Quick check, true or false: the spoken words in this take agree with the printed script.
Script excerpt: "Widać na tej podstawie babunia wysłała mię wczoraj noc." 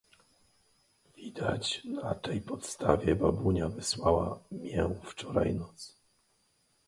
true